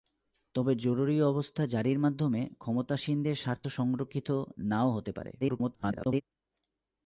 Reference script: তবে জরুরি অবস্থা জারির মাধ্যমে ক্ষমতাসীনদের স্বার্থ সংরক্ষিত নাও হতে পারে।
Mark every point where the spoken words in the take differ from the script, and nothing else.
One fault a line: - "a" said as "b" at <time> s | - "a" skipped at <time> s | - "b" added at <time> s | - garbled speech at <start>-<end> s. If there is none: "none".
- garbled speech at 5.4-6.2 s